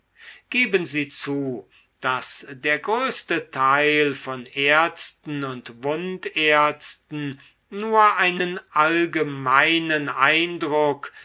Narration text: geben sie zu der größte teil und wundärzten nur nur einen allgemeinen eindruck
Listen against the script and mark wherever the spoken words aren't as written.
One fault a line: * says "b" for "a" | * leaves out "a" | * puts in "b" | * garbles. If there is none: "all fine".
* puts in "daß"
* puts in "von ärzten"
* leaves out "nur"